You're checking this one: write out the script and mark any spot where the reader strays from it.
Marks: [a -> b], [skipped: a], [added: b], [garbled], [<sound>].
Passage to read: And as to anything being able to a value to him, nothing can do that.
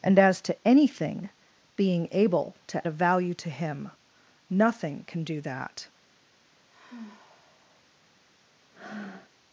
And as to anything being able to a value to him, nothing can do that. [sigh] [breath]